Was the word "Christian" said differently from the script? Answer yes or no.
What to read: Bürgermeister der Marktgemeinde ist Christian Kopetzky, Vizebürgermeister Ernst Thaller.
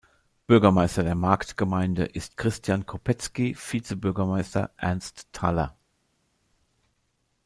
no